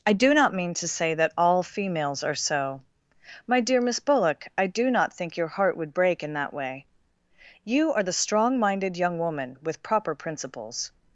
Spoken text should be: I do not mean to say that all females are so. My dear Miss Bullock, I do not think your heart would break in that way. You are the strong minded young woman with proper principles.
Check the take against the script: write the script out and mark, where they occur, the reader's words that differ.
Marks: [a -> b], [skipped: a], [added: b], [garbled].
I do not mean to say that all females are so. My dear Miss Bullock, I do not think your heart would break in that way. You are the strong minded young woman with proper principles.